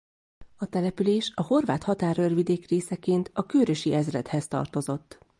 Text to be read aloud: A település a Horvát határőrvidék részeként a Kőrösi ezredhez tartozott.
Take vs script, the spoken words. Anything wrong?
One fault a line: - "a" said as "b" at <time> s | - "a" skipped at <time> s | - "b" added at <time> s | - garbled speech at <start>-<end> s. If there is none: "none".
none